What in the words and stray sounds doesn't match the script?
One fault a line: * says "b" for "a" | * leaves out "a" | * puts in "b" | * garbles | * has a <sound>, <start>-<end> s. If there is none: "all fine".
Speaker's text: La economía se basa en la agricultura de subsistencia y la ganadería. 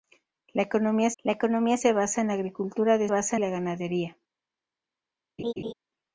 * puts in "la economía"
* says "basa" for "subsistencia"
* has a laugh, 5.4-5.7 s